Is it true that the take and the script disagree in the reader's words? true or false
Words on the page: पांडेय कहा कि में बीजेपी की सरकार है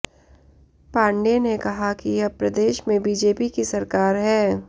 true